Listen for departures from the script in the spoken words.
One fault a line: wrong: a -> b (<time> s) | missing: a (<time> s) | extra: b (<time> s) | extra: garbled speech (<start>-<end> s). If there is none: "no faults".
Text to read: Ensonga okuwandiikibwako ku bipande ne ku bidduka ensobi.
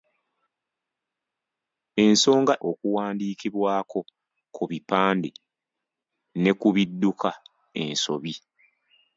no faults